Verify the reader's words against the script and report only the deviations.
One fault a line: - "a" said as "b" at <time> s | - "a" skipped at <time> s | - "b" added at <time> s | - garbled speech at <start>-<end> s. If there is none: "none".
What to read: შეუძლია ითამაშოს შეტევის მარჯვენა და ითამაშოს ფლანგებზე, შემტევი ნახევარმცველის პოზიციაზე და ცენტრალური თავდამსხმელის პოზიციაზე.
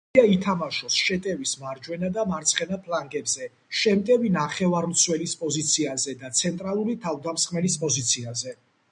- "ითამაშოს" said as "მარცხენა" at 2.3 s